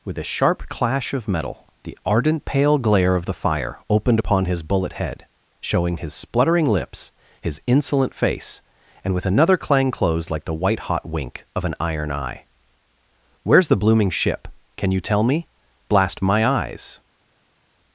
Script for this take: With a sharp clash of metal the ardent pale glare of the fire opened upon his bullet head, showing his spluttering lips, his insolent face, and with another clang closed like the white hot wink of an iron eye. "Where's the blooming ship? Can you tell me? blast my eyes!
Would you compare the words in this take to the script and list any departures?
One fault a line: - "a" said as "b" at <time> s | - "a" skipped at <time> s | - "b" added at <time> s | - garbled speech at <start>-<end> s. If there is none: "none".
none